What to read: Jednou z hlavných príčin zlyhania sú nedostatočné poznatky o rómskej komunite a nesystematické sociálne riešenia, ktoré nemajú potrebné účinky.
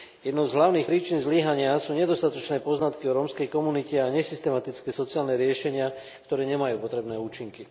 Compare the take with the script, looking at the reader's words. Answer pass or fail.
pass